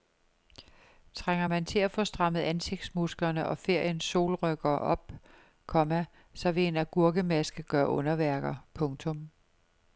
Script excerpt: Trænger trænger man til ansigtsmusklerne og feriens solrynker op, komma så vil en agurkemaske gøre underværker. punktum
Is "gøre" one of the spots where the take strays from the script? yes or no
no